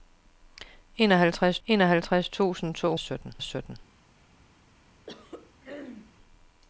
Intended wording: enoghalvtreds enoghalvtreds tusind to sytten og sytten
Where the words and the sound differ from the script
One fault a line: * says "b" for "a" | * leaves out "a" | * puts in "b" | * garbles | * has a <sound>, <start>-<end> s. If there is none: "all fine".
* has a throat clearing, 5.1-6.1 s